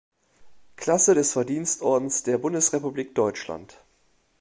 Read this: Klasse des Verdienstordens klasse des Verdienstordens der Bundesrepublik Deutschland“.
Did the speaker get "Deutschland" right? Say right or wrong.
right